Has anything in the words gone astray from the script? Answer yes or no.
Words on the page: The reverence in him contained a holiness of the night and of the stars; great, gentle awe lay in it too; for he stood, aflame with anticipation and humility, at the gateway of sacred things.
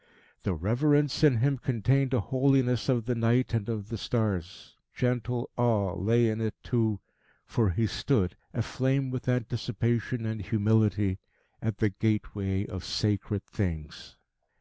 yes